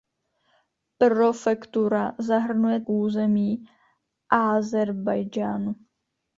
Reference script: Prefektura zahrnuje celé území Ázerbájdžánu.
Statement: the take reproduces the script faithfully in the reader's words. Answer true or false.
false